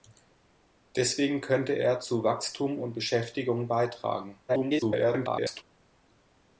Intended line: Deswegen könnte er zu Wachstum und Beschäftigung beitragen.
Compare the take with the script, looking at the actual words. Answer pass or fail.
fail